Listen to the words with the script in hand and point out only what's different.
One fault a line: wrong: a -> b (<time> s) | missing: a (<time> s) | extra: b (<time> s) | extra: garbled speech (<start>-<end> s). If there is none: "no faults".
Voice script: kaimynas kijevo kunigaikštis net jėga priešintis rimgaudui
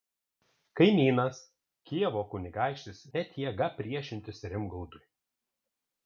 no faults